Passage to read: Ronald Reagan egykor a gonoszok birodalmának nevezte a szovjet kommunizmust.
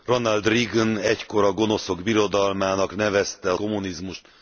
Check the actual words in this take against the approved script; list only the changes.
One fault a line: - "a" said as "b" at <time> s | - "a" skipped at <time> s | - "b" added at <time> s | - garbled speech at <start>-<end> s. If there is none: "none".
- "szovjet" skipped at 3.6 s